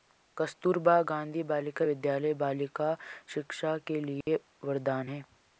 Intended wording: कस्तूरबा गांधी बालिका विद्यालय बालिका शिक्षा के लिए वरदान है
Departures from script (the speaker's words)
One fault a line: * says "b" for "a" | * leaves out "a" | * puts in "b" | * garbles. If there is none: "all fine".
all fine